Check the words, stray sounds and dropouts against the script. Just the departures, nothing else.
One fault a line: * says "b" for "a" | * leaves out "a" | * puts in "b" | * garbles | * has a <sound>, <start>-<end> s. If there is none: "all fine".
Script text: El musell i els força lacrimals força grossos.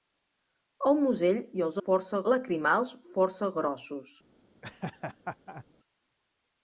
* has a laugh, 4.6-5.6 s